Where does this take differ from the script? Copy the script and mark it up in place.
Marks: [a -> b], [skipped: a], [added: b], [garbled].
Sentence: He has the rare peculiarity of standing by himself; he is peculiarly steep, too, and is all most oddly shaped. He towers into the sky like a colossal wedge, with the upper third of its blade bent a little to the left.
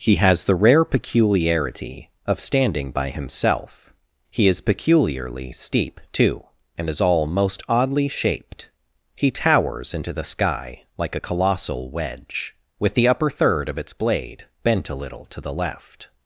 He has the rare peculiarity of standing by himself; he is peculiarly steep, too, and is all most oddly shaped. He towers into the sky like a colossal wedge, with the upper third of its blade bent a little to the left.